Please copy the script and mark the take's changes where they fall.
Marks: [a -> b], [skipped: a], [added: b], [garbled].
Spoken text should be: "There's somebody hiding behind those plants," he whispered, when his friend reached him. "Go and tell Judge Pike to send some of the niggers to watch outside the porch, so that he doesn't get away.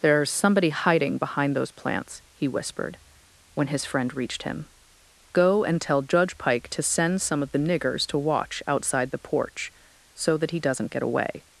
"There's somebody hiding behind those plants," he whispered, when his friend reached him. "Go and tell Judge Pike to send some of the niggers to watch outside the porch, so that he doesn't get away.